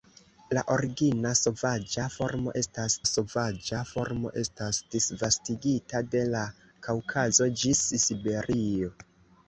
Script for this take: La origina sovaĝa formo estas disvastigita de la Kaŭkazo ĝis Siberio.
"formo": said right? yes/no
yes